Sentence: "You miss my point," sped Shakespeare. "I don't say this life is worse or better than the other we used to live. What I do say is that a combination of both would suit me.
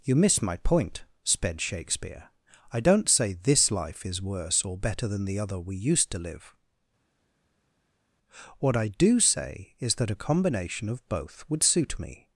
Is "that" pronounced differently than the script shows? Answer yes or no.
no